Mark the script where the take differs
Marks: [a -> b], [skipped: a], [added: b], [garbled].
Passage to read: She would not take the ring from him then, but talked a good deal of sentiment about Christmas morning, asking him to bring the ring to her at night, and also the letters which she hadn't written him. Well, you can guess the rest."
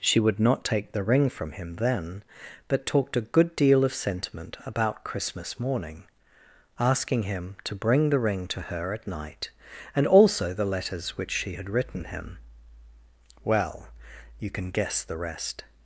She would not take the ring from him then, but talked a good deal of sentiment about Christmas morning, asking him to bring the ring to her at night, and also the letters which she [hadn't -> had] written him. Well, you can guess the rest."